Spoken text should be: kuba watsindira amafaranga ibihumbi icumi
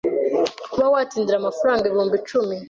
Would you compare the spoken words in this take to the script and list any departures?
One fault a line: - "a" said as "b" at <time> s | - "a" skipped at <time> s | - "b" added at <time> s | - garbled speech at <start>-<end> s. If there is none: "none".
none